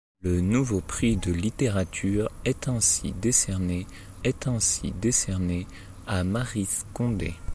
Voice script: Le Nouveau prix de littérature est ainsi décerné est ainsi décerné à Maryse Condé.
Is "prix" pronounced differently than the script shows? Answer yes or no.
no